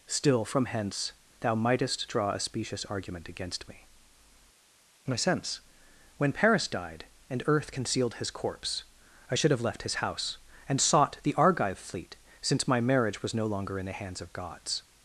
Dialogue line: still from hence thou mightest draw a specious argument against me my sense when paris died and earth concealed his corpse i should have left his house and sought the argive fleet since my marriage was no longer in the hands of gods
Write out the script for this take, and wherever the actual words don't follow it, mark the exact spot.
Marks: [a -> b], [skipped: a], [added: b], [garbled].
still from hence thou mightest draw a specious argument against me my sense when paris died and earth concealed his corpse i should have left his house and sought the argive fleet since my marriage was no longer in the hands of gods